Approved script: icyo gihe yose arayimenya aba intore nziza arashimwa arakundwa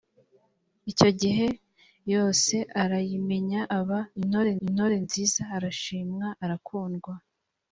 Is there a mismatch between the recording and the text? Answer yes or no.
yes